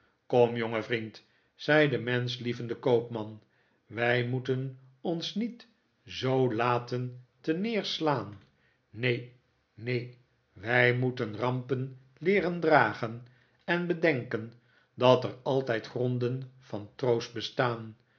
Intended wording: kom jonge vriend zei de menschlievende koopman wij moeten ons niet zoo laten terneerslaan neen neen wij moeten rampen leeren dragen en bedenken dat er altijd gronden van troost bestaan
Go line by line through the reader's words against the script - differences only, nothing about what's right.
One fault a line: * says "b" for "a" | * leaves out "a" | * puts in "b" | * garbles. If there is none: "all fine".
all fine